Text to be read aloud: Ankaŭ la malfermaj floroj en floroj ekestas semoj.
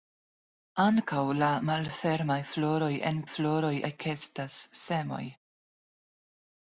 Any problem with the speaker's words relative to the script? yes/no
no